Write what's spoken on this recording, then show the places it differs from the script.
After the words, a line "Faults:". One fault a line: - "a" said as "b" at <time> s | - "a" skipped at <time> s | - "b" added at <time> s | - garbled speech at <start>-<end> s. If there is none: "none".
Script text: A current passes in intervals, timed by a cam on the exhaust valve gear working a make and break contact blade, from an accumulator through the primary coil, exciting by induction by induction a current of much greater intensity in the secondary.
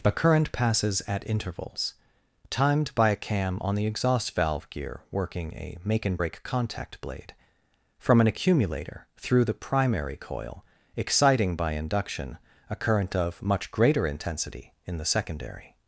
A current passes at intervals, timed by a cam on the exhaust valve gear working a make and break contact blade, from an accumulator through the primary coil, exciting by induction a current of much greater intensity in the secondary.
Faults:
- "in" said as "at" at 1.1 s
- "by induction" skipped at 12.4 s